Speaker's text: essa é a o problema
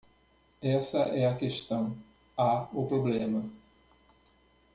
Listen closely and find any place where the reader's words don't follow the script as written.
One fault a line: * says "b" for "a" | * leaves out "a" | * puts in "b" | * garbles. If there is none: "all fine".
* puts in "questão há"